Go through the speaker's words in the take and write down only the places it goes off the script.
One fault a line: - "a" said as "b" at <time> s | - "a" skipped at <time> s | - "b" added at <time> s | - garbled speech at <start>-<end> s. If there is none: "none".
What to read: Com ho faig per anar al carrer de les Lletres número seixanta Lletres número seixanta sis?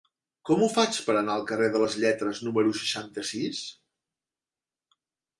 - "Lletres número seixanta" skipped at 3.2 s